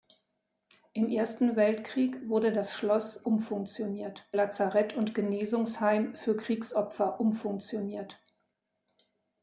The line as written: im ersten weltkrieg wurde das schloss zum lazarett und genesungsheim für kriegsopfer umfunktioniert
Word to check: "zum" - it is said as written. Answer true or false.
false